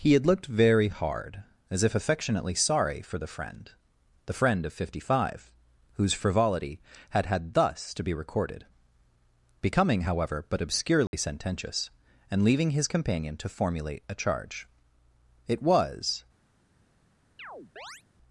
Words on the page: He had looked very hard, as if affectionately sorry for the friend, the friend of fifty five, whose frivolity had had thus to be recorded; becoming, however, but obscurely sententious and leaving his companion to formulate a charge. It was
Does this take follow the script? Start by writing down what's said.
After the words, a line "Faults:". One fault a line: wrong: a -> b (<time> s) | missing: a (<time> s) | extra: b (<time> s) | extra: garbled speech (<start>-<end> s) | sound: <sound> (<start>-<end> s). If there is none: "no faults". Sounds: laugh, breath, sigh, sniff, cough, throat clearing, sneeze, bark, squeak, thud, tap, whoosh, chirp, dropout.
He had looked very hard, as if affectionately sorry for the friend, the friend of fifty five, whose frivolity had had thus to be recorded; becoming, however, but obscurely sententious and leaving his companion to formulate a charge. It was
Faults:
sound: dropout (11.1-11.1 s)
sound: chirp (17.4-18.0 s)